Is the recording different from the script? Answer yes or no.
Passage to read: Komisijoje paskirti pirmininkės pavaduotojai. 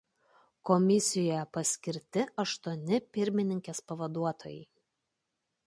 yes